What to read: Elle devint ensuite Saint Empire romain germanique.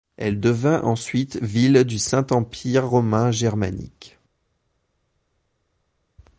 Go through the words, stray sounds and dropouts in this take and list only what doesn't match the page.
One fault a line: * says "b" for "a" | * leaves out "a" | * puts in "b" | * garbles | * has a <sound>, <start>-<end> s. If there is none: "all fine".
* puts in "ville du"